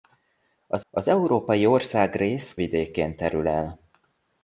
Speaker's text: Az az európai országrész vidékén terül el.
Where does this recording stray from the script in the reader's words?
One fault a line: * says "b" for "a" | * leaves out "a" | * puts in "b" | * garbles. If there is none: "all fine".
all fine